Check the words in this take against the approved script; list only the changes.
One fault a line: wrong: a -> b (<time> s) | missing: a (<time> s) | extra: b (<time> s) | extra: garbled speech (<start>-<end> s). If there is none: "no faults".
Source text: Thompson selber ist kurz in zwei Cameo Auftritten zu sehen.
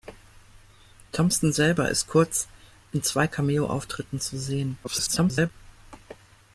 extra: garbled speech (4.8-5.5 s)